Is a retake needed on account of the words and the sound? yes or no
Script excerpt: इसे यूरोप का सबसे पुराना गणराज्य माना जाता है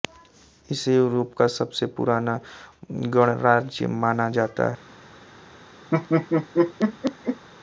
yes